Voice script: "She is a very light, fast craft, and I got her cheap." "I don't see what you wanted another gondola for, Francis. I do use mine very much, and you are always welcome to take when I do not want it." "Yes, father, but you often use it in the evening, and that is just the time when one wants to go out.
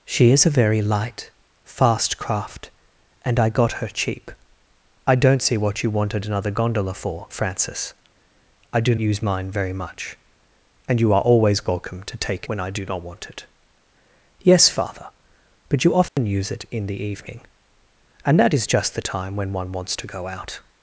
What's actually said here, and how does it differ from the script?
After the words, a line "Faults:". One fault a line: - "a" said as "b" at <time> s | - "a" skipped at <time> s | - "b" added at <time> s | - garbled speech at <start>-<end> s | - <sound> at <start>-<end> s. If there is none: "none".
"She is a very light, fast craft, and I got her cheap." "I don't see what you wanted another gondola for, Francis. I do use mine very much, and you are always welcome to take when I do not want it." "Yes, father, but you often use it in the evening, and that is just the time when one wants to go out.
Faults:
- dropout at 16.1-16.2 s